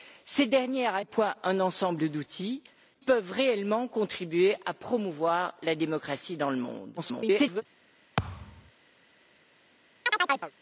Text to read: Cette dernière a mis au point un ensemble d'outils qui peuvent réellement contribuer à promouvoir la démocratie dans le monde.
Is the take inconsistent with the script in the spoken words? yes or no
yes